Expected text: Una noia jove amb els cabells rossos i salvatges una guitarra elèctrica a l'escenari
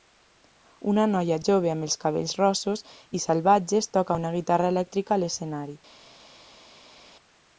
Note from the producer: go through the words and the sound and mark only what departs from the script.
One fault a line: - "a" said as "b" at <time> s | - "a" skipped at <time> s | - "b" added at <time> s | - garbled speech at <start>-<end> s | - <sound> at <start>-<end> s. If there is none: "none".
- "toca" added at 4.0 s